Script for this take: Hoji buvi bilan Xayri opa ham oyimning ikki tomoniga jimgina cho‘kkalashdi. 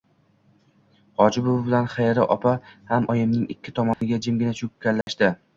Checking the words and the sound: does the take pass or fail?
fail